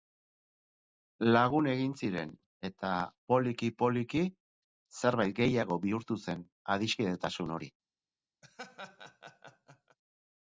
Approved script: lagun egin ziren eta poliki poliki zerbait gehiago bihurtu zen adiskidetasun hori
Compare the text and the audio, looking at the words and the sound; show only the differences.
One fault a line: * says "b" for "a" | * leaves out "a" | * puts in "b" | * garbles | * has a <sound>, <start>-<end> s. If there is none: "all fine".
* has a laugh, 8.4-10.0 s